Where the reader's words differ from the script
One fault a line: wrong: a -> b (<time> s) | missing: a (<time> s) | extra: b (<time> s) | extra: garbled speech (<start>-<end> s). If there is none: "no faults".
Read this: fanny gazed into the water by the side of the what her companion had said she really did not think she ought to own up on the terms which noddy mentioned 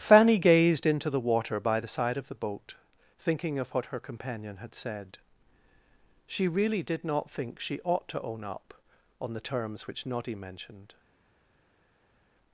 extra: boat thinking of (2.3 s)